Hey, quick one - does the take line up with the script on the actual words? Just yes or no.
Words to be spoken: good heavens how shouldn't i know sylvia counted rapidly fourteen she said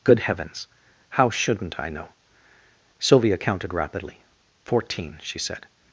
yes